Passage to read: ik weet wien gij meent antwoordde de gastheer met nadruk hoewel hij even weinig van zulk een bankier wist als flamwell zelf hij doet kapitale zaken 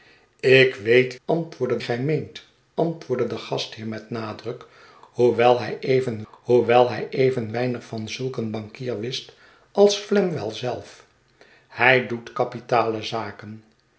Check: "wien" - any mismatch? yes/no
yes